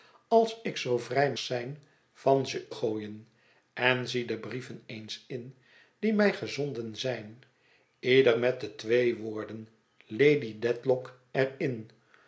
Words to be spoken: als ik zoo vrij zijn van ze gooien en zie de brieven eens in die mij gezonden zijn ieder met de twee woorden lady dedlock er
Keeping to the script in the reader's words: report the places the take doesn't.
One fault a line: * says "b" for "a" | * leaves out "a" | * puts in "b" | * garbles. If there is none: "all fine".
all fine